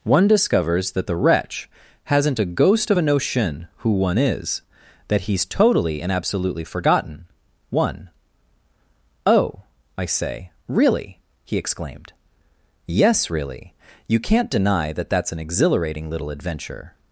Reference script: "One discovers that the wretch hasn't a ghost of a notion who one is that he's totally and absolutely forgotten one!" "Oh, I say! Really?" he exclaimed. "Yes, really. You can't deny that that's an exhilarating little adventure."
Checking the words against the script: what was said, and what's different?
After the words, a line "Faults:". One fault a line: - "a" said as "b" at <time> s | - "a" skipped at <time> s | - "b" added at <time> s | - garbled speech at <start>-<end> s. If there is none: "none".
"One discovers that the wretch hasn't a ghost of a notion who one is that he's totally and absolutely forgotten one!" "Oh, I say! Really?" he exclaimed. "Yes, really. You can't deny that that's an exhilarating little adventure."
Faults:
none